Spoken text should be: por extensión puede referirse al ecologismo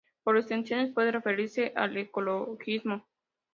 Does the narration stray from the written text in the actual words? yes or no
no